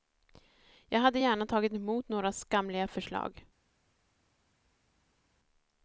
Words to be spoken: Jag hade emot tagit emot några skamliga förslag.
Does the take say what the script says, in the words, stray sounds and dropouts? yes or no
no